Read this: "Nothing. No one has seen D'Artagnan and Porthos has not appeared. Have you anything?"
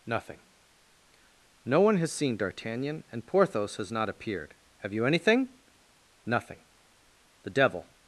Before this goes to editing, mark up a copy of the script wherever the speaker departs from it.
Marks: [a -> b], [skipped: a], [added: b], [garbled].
"Nothing. No one has seen D'Artagnan and Porthos has not appeared. Have you anything?" [added: Nothing The devil]